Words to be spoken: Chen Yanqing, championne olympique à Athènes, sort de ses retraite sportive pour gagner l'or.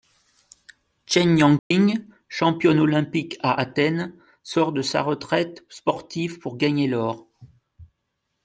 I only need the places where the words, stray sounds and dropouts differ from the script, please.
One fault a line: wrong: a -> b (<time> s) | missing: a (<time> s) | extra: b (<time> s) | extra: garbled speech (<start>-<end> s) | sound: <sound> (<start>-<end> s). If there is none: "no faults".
sound: dropout (1.6-1.7 s)
wrong: ses -> sa (4.8 s)